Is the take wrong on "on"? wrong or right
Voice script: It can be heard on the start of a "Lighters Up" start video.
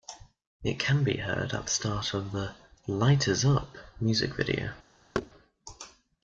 wrong